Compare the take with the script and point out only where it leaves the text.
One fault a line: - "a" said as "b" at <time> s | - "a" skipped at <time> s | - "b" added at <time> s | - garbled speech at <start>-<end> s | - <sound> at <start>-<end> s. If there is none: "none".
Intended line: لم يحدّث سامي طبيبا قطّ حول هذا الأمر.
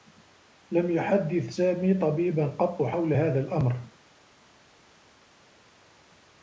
none